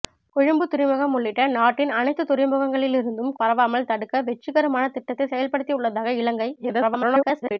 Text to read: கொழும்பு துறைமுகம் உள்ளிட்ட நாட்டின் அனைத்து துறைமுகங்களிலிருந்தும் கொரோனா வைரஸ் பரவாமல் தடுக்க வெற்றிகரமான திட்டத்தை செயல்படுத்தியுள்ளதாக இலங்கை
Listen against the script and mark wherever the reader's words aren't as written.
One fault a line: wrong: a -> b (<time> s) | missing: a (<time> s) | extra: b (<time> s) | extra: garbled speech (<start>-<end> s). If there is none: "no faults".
missing: கொரோனா வைரஸ் (3.3 s)
extra: garbled speech (6.6-7.6 s)